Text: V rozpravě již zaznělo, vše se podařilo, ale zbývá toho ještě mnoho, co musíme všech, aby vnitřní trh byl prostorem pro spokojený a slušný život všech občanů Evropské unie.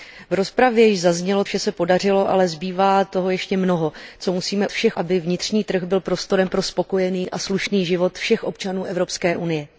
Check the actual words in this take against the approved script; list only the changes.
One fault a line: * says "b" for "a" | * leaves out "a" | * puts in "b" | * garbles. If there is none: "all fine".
all fine